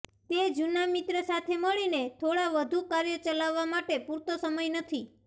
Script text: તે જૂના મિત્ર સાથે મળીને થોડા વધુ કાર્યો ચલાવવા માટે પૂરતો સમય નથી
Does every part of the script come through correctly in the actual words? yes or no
yes